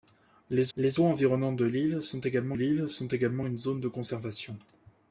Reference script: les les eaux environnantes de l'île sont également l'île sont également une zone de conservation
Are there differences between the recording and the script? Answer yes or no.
no